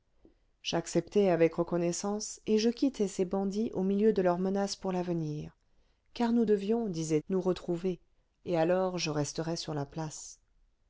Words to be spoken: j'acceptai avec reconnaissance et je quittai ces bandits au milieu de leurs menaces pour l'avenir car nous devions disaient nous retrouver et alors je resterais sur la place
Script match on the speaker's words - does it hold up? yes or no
yes